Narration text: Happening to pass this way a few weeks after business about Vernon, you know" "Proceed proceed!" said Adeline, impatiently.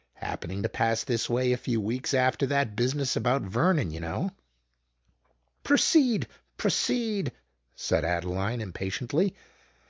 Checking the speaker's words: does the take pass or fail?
fail